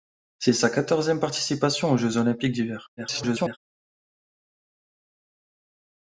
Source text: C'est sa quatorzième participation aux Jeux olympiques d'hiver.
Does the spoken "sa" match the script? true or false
true